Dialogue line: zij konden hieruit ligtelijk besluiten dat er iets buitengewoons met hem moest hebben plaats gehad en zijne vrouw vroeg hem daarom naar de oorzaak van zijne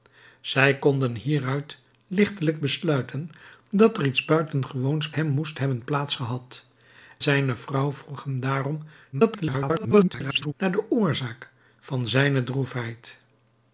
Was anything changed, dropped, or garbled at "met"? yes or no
yes